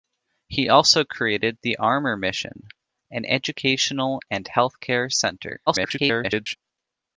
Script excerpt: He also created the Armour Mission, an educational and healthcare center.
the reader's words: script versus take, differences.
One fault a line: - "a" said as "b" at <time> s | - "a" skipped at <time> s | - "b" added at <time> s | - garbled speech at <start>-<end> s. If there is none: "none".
- garbled speech at 5.7-6.6 s